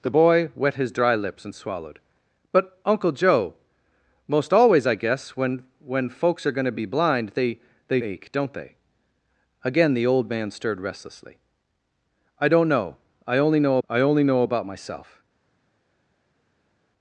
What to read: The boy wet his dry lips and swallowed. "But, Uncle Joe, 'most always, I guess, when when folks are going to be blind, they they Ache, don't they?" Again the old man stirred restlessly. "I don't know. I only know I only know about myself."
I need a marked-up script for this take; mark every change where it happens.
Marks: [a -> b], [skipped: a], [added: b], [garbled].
The boy wet his dry lips and swallowed. "But, Uncle Joe, 'most always, I guess, when when folks are going to be blind, they they Ache, don't they?" Again the old man stirred restlessly. "I don't know. I only know I only know about myself."